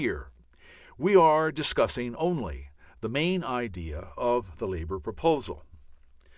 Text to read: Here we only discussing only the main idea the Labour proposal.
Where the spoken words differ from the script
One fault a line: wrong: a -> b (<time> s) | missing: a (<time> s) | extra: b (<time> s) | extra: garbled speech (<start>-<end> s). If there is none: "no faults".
wrong: only -> are (1.1 s)
extra: of (4.1 s)